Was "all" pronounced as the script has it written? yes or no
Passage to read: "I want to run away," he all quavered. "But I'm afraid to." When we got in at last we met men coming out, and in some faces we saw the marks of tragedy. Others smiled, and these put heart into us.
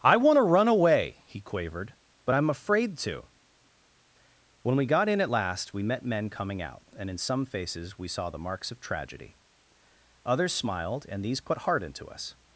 no